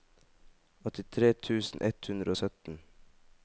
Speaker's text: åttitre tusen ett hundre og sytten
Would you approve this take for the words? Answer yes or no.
yes